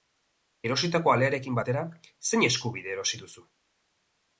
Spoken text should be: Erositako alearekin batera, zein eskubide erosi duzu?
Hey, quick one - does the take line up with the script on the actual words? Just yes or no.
yes